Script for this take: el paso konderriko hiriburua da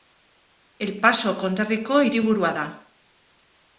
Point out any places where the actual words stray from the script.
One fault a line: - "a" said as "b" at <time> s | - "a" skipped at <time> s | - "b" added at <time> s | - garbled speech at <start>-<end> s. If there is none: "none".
none